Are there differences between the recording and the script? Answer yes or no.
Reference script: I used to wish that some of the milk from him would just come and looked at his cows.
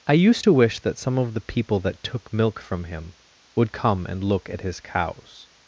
yes